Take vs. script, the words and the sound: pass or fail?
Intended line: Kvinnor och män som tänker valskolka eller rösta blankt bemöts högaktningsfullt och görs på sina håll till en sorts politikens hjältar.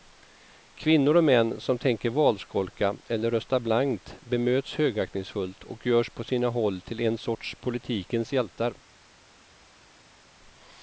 pass